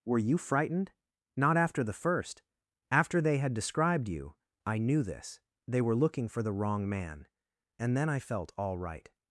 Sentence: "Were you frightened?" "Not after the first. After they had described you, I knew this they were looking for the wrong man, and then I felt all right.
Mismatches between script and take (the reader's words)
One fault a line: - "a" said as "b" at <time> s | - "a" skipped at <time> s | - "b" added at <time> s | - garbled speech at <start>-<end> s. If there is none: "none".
none